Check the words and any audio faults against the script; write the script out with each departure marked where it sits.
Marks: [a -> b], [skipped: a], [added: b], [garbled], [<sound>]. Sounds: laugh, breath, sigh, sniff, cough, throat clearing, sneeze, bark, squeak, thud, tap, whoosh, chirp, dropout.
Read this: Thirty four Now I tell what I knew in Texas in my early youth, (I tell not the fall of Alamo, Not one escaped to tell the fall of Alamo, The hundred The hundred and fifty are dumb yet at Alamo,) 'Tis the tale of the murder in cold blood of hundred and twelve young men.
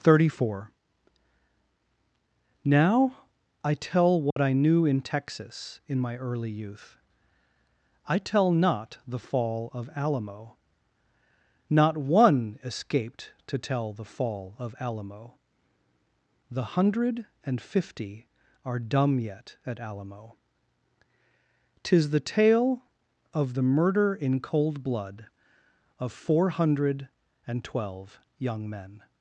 Thirty four Now I tell what [dropout] I knew in Texas in my early youth, (I tell not the fall of Alamo, Not one escaped to tell the fall of Alamo, The hundred [skipped: The hundred] and fifty are dumb yet at Alamo,) 'Tis the tale of the murder in cold blood of [added: four] hundred and twelve young men.